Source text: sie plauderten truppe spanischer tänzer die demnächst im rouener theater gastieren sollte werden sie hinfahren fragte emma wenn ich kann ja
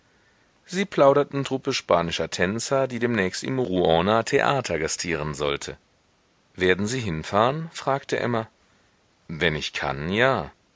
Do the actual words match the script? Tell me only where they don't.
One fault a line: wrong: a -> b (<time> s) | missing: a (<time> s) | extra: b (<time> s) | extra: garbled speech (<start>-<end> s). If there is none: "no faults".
no faults